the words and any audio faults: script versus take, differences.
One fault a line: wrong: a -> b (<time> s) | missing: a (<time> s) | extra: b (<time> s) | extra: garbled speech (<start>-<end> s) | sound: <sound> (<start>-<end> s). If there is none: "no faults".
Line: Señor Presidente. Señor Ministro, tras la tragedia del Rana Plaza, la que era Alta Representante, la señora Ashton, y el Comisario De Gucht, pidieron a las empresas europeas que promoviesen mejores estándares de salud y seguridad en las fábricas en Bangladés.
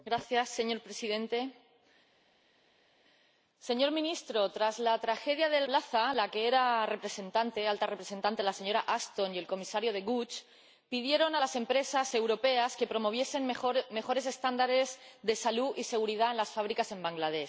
missing: Rana (5.7 s)